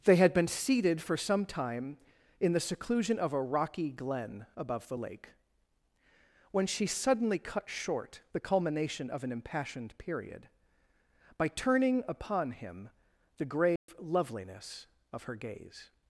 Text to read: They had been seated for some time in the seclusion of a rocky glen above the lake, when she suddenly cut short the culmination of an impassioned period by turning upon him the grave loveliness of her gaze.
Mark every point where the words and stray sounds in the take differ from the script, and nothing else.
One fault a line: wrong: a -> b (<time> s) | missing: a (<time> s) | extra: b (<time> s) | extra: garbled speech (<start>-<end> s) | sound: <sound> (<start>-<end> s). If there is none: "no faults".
sound: dropout (13.8-13.9 s)